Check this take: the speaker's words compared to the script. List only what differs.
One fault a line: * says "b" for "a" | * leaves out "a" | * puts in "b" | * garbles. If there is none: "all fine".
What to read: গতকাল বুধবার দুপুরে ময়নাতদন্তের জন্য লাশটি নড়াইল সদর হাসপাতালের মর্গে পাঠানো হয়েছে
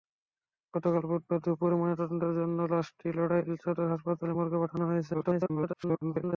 * garbles